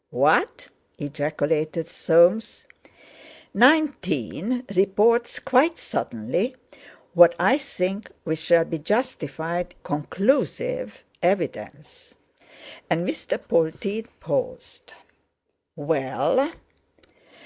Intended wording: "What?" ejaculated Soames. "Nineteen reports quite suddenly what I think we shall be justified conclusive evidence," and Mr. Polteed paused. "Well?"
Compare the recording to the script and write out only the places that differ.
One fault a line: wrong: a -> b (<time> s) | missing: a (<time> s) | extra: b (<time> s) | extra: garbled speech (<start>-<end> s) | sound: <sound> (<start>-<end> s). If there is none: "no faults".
no faults